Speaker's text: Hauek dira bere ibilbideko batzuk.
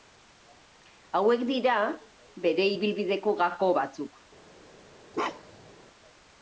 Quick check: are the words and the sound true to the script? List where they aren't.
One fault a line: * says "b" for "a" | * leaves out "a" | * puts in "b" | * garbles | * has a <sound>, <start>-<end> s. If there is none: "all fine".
* puts in "gako"
* has a bark, 5.1-5.7 s